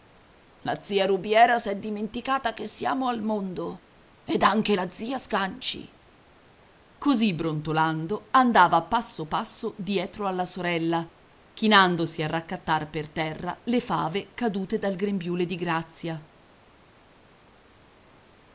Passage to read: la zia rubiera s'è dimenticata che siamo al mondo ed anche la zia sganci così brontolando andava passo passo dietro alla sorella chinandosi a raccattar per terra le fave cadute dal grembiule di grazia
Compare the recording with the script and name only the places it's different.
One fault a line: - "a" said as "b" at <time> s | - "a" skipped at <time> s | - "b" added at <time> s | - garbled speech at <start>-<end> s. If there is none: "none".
none